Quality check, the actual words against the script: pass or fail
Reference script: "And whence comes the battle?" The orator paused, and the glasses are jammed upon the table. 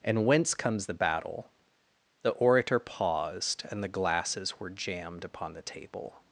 fail